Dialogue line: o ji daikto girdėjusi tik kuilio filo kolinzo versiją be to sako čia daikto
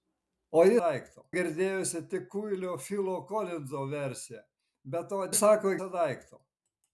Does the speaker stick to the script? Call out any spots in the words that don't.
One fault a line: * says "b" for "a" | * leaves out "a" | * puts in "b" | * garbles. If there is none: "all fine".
all fine